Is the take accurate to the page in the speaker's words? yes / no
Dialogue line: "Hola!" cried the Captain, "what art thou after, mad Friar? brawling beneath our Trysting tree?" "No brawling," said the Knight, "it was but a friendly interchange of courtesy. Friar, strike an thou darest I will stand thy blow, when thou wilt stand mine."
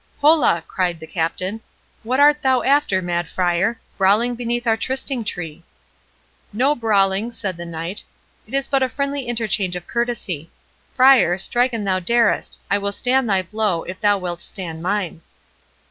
no